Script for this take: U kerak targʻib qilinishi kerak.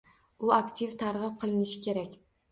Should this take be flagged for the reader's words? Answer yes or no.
yes